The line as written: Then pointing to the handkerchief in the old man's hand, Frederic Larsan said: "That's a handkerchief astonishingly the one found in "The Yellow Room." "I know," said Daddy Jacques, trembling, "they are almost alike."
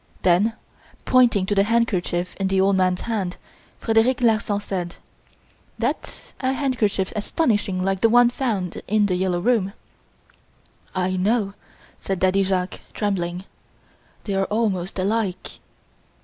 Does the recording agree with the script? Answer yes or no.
no